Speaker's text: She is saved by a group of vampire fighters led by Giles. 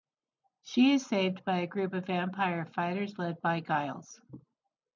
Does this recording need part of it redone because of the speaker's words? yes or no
no